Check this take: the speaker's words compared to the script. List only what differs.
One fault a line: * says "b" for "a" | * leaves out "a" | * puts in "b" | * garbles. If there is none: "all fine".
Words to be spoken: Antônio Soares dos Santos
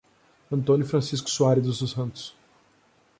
* puts in "Francisco"